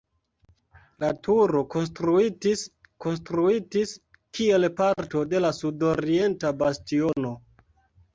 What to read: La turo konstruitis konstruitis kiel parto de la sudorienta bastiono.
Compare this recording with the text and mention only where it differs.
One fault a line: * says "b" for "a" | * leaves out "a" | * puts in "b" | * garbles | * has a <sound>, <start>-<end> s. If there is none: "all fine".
all fine